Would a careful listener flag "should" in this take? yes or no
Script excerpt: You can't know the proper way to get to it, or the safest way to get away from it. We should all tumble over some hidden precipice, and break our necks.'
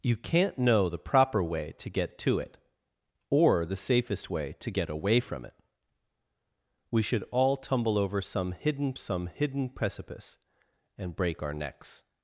no